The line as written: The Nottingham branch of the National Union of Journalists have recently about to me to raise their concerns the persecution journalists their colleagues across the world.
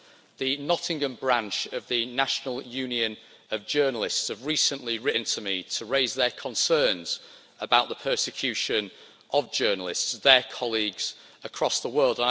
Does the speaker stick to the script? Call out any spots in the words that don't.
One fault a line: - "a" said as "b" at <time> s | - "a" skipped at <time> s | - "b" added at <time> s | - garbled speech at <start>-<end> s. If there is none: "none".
- "about" said as "written" at 5.0 s
- "about" added at 7.6 s
- "of" added at 9.3 s